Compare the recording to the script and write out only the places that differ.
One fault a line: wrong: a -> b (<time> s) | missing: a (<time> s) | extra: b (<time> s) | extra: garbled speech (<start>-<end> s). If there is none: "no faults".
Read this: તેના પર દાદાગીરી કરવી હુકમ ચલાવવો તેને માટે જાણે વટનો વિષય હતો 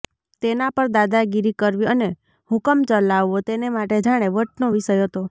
extra: અને (1.9 s)